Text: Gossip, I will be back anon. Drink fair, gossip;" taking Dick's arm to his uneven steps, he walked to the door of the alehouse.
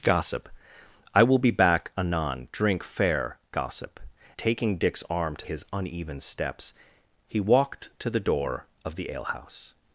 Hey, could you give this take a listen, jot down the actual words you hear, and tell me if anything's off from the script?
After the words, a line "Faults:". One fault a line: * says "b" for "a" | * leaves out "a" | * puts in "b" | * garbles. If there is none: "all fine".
Gossip, I will be back anon. Drink fair, gossip;" taking Dick's arm to his uneven steps, he walked to the door of the alehouse.
Faults:
all fine